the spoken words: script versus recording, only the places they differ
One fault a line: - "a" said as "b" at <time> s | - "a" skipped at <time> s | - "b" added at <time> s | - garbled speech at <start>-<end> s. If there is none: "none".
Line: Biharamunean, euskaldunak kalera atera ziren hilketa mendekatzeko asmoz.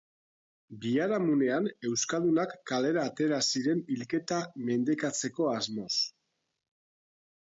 none